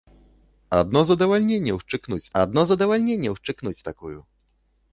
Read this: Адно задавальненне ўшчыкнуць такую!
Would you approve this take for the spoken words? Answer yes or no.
no